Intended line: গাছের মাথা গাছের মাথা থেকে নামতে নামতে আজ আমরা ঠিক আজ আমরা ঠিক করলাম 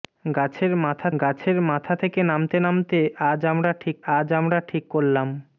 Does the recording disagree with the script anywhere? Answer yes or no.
no